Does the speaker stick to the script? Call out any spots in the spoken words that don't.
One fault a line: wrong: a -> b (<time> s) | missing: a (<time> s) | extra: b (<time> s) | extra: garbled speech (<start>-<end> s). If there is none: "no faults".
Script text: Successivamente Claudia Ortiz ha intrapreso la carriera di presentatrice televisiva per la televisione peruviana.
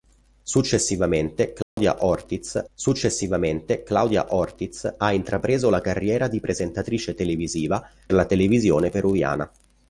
extra: successivamente Claudia Ortiz (2.7 s)
missing: per (7.9 s)